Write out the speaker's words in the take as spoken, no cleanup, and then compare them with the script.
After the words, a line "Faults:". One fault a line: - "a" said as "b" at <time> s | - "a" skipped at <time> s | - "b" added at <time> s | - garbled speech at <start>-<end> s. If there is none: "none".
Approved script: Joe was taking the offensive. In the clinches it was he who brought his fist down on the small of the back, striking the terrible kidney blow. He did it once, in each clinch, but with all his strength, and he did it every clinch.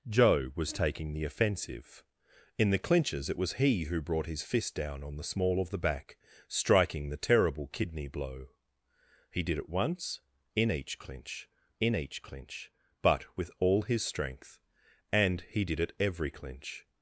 Joe was taking the offensive. In the clinches it was he who brought his fist down on the small of the back, striking the terrible kidney blow. He did it once, in each clinch in each clinch, but with all his strength, and he did it every clinch.
Faults:
- "in each clinch" added at 11.8 s